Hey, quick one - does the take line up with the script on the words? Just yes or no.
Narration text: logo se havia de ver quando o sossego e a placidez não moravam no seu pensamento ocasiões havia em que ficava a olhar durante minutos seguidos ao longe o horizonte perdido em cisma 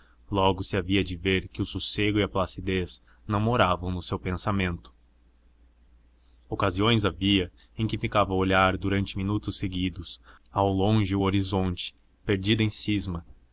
no